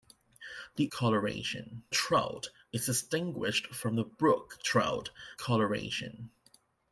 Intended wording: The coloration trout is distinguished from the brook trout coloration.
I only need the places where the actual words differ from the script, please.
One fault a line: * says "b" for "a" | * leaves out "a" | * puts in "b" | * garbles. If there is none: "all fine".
all fine